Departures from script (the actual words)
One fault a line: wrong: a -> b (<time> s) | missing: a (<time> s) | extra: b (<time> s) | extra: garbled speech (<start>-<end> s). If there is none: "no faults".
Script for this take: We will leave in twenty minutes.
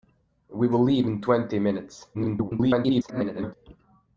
extra: garbled speech (2.1-3.5 s)